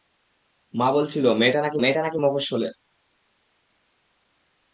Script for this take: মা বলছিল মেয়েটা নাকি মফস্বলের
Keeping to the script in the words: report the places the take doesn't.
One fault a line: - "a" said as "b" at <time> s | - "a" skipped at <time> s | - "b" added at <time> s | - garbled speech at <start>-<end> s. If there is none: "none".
- "মেয়েটা নাকি" added at 1.8 s